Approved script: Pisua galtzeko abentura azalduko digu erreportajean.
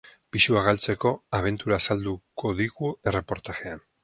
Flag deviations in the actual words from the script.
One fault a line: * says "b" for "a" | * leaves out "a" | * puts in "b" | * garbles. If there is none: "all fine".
all fine